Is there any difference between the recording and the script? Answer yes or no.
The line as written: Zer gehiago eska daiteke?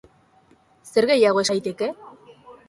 yes